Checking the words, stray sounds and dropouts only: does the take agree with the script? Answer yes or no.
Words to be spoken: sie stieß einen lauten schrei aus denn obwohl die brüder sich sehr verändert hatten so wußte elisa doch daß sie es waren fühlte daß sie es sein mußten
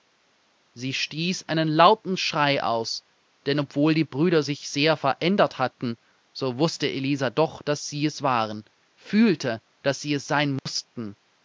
no